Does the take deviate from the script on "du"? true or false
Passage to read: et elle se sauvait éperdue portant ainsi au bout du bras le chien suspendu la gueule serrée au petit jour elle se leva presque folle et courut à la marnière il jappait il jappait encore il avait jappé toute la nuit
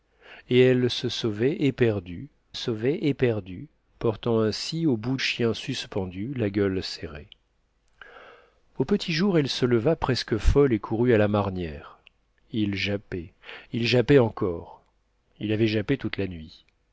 true